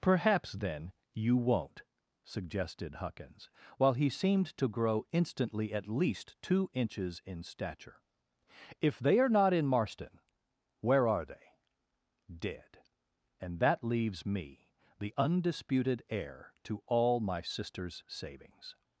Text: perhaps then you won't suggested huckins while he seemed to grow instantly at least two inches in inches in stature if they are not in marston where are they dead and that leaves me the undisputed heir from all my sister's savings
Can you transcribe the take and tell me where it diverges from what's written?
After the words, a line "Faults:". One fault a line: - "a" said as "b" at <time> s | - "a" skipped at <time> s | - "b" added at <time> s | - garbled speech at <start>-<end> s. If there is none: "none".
perhaps then you won't suggested huckins while he seemed to grow instantly at least two inches in stature if they are not in marston where are they dead and that leaves me the undisputed heir to all my sister's savings
Faults:
- "inches in" skipped at 7.4 s
- "from" said as "to" at 16.6 s